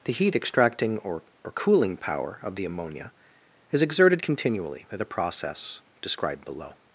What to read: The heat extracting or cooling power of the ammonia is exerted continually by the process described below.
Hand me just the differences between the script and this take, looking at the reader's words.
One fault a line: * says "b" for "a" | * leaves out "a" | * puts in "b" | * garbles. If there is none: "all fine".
* puts in "or"